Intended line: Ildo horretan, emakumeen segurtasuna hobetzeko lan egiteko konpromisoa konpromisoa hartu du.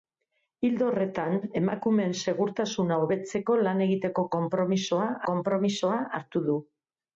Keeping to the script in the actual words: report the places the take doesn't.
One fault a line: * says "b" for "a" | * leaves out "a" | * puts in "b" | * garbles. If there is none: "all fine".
all fine